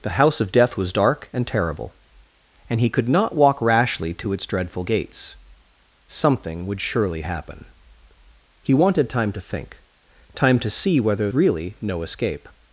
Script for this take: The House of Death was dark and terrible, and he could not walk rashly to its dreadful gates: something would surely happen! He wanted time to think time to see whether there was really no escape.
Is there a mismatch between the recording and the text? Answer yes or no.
yes